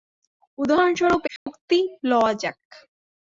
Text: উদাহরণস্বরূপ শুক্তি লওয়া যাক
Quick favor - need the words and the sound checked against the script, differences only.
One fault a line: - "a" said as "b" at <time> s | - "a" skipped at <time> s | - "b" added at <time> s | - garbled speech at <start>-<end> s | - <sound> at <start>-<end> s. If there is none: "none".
- dropout at 1.4-1.5 s